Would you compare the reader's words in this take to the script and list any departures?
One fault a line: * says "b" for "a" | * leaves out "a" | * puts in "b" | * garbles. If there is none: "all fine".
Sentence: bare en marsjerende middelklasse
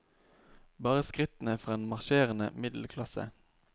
* puts in "skrittene fra"